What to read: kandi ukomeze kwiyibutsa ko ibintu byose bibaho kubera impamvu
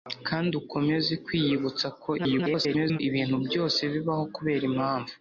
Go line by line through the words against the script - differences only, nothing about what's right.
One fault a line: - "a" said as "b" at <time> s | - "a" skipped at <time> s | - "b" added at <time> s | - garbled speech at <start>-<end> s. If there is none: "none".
- garbled speech at 2.2-3.0 s